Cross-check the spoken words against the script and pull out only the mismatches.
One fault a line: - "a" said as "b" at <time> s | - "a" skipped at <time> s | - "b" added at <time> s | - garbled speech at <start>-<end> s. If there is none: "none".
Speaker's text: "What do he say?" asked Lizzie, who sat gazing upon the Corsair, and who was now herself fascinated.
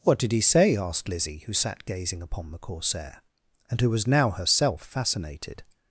- "do" said as "did" at 0.2 s